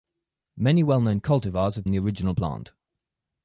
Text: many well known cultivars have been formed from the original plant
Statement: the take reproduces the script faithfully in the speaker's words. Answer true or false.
false